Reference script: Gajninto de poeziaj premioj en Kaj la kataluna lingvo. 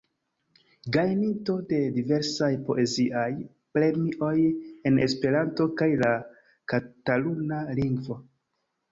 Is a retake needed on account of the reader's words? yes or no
yes